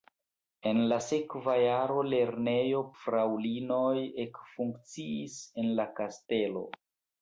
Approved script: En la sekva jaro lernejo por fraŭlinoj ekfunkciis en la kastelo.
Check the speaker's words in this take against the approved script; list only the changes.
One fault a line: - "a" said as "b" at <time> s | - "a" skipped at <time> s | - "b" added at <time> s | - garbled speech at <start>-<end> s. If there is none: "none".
- "por" skipped at 2.8 s